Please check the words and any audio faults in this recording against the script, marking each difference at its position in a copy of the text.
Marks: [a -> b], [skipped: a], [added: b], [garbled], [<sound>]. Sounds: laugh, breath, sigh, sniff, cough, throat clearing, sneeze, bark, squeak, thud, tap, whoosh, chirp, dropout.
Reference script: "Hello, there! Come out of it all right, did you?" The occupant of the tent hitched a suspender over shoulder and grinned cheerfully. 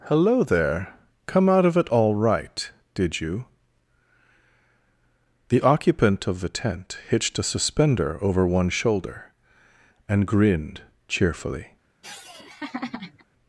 "Hello, there! Come out of it all right, did you?" The occupant of the tent hitched a suspender over [added: one] shoulder and grinned cheerfully. [laugh]